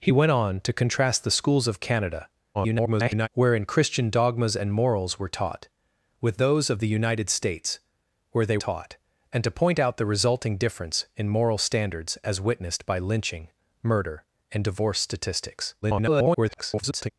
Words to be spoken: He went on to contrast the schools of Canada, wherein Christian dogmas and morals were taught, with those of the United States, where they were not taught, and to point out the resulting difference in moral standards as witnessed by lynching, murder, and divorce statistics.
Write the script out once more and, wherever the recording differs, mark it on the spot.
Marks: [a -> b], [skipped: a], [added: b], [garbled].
He went on to contrast the schools of Canada, [garbled] wherein Christian dogmas and morals were taught, with those of the United States, where they [skipped: were not] taught, and to point out the resulting difference in moral standards as witnessed by lynching, murder, and divorce statistics. [garbled]